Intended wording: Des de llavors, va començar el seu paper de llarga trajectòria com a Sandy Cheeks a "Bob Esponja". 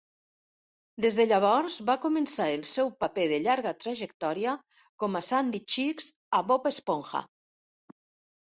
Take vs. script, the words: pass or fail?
pass